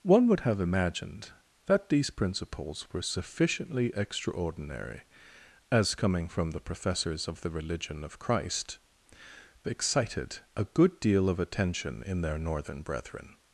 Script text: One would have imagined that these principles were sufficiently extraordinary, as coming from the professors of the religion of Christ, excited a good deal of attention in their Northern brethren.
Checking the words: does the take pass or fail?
pass